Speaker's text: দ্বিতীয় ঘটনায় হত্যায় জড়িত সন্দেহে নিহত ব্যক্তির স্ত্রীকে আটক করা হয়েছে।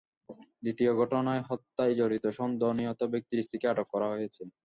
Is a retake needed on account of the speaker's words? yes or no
no